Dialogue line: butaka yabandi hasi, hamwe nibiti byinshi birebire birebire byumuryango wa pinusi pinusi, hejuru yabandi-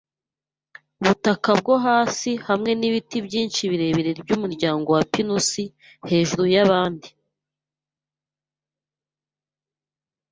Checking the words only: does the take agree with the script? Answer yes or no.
no